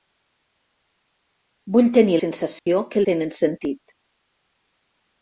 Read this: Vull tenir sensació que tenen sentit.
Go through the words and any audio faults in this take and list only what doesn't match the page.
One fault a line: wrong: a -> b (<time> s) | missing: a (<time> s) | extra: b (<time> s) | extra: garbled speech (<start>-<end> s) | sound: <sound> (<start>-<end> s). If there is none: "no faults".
sound: dropout (2.6-2.7 s)